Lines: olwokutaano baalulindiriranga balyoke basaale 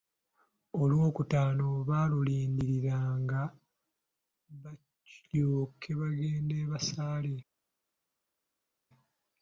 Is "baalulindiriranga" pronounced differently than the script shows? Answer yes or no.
no